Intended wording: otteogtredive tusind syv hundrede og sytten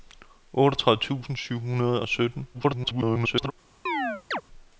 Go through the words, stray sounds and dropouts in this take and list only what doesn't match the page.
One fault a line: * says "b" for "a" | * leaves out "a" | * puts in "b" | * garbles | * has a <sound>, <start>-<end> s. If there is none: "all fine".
* garbles
* has a chirp, 3.9-4.4 s